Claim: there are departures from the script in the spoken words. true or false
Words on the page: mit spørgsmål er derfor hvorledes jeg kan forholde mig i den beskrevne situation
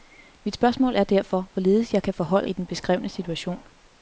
true